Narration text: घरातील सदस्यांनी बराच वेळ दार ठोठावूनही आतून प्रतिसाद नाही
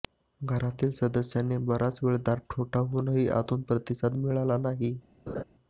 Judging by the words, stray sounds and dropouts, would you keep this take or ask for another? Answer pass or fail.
fail